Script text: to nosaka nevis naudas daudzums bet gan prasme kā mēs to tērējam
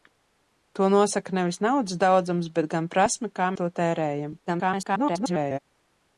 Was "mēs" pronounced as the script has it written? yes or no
no